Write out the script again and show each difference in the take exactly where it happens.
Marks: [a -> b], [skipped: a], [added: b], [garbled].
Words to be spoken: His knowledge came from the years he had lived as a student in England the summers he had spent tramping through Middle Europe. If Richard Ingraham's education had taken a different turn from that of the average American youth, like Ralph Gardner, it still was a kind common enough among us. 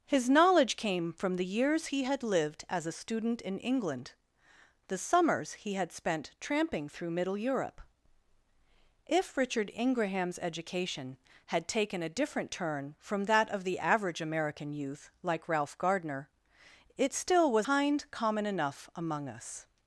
His knowledge came from the years he had lived as a student in England the summers he had spent tramping through Middle Europe. If Richard Ingraham's education had taken a different turn from that of the average American youth, like Ralph Gardner, it still was [skipped: a] kind common enough among us.